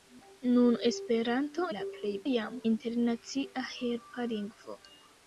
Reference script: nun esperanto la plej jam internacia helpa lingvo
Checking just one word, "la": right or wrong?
right